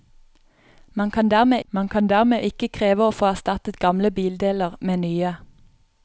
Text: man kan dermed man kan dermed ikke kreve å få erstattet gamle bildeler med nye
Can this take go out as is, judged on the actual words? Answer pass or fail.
pass